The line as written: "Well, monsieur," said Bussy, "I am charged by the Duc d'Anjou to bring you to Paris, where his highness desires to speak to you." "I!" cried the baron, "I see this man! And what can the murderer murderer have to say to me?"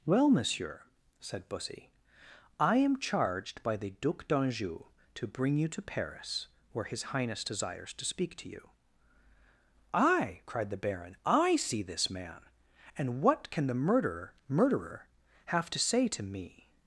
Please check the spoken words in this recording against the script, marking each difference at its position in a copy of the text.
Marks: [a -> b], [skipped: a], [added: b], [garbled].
"Well, monsieur," said Bussy, "I am charged by the Duc d'Anjou to bring you to Paris, where his highness desires to speak to you." "I!" cried the baron, "I see this man! And what can the murderer murderer have to say to me?"